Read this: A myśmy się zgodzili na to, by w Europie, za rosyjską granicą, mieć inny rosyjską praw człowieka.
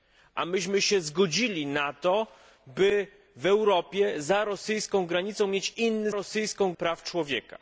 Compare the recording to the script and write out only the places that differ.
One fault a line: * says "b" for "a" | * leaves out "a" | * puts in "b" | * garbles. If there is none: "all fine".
all fine